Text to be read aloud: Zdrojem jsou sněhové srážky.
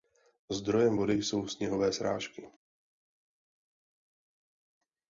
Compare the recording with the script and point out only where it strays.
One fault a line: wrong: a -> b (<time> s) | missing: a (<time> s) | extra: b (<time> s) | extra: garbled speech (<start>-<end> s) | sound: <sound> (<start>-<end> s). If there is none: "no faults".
extra: vody (0.9 s)